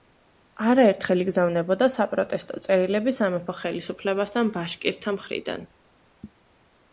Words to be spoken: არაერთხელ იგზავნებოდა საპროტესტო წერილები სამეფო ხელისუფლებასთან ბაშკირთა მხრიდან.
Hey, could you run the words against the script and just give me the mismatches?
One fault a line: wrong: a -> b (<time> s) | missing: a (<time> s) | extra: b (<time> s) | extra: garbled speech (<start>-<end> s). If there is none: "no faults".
no faults